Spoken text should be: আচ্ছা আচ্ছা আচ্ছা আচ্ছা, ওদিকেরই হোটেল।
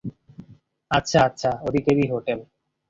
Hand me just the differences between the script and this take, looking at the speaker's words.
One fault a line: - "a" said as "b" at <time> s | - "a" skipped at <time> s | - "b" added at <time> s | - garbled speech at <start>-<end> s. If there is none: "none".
- "আচ্ছা আচ্ছা" skipped at 1.5 s